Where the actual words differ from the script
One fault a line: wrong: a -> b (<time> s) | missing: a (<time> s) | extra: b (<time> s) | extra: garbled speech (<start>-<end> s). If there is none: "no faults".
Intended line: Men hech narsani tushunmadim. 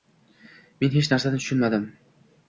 no faults